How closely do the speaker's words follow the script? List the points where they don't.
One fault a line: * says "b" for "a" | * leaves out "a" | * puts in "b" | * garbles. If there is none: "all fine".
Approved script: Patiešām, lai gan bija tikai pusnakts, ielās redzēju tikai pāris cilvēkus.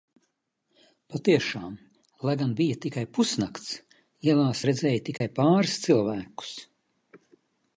all fine